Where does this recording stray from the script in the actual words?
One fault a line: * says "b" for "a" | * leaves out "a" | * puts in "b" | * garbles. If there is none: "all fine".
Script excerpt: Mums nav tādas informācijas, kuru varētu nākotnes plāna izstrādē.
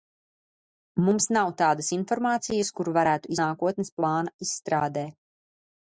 all fine